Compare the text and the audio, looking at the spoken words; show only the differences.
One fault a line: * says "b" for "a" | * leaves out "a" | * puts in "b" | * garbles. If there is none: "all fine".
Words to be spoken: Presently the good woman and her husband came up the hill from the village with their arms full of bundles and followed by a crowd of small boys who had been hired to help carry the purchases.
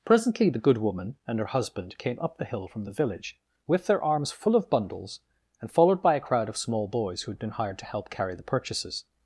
all fine